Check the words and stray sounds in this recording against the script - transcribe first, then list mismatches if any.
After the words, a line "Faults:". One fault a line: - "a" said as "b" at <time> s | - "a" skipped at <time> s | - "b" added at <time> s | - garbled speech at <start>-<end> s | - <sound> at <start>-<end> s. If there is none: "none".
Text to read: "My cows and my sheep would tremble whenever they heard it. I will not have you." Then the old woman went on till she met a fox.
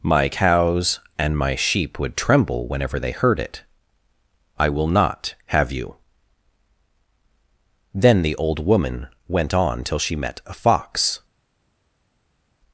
"My cows and my sheep would tremble whenever they heard it. I will not have you." Then the old woman went on till she met a fox.
Faults:
none